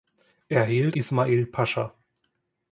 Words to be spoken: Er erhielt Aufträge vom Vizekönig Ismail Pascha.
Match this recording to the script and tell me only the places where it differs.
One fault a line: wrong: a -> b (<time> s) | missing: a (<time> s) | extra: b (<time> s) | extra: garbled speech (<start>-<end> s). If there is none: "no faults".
missing: Aufträge vom Vizekönig (1.0 s)